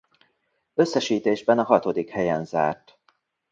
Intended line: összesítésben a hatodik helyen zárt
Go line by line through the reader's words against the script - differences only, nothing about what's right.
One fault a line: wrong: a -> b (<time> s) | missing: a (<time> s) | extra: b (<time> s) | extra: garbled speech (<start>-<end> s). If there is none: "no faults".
no faults